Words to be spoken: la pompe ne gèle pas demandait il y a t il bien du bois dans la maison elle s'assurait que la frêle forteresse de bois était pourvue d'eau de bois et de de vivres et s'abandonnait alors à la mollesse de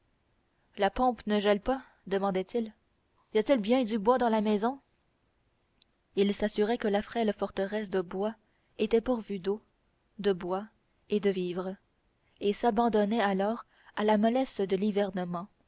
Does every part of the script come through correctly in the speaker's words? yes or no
no